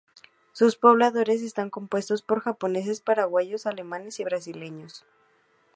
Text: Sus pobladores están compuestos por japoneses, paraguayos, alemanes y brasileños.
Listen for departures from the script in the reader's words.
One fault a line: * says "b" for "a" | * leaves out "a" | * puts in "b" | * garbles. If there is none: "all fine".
all fine